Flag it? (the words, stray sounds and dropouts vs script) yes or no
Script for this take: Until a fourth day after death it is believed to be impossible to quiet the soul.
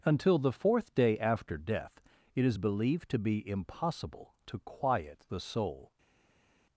yes